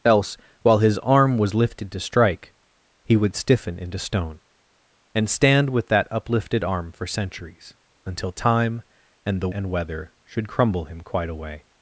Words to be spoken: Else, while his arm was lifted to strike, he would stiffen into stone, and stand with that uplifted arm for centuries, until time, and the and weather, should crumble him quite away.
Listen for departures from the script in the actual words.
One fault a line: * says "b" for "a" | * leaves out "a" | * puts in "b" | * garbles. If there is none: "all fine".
all fine